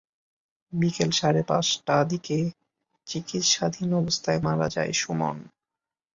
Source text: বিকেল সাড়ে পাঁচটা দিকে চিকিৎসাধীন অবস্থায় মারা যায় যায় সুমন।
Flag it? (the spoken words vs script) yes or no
yes